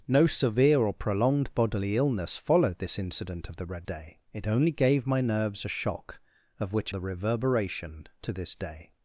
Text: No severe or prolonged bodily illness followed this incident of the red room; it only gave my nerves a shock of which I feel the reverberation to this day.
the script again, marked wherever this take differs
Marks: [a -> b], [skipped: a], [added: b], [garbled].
No severe or prolonged bodily illness followed this incident of the red [room; -> day] it only gave my nerves a shock of which [skipped: I feel] the reverberation to this day.